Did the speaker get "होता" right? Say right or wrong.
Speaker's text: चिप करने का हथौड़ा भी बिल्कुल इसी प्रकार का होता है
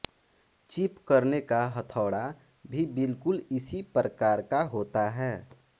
right